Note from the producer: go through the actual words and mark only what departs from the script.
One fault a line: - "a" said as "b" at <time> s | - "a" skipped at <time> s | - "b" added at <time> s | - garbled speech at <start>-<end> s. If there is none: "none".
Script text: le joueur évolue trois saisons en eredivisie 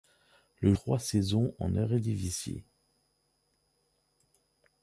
- "joueur évolue" skipped at 0.7 s